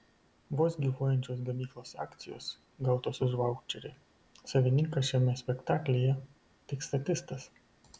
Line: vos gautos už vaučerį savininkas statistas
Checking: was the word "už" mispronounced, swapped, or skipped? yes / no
no